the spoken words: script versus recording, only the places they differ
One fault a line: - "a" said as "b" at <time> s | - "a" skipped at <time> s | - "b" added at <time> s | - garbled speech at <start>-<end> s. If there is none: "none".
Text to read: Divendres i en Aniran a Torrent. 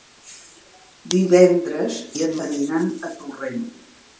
none